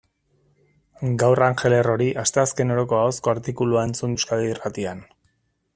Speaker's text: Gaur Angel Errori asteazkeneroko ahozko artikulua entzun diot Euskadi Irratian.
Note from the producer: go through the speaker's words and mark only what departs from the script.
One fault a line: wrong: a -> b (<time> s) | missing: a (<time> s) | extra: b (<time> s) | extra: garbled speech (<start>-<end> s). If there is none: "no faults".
missing: diot (4.2 s)